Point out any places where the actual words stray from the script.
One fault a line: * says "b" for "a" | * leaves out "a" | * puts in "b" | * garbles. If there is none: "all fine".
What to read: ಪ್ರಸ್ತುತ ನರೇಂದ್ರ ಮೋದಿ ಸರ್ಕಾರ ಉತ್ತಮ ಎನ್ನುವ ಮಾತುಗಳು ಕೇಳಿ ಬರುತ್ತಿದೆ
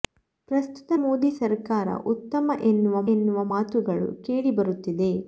* leaves out "ನರೇಂದ್ರ"
* puts in "ಎನ್ನುವ"